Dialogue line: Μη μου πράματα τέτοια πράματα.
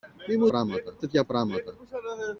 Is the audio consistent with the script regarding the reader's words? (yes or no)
yes